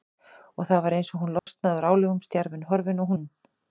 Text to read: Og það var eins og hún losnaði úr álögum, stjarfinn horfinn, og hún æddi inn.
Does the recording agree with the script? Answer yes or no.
no